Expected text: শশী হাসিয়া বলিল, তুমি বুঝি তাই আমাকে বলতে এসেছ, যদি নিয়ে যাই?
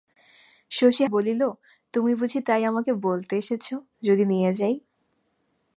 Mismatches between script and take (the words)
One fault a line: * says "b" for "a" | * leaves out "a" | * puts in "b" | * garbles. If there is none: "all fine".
* leaves out "হাসিয়া"